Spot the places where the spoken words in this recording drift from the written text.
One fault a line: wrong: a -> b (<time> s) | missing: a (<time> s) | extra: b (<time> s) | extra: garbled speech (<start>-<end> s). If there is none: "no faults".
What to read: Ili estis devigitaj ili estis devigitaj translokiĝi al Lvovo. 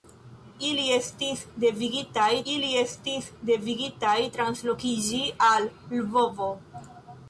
no faults